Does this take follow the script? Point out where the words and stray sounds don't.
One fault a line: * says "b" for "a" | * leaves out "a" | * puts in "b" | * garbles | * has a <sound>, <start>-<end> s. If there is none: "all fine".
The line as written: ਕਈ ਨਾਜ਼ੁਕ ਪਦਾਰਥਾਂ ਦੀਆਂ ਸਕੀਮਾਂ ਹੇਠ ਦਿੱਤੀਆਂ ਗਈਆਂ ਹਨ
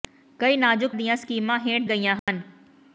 * leaves out "ਪਦਾਰਥਾਂ"
* leaves out "ਦਿੱਤੀਆਂ"
* has a dropout, 2.2-2.3 s